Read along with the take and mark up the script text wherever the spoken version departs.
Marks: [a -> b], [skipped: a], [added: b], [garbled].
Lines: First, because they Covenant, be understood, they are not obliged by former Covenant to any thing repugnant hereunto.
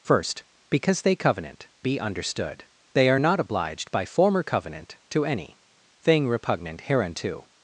First, because they Covenant, be understood, they are not obliged by former Covenant to any thing repugnant hereunto.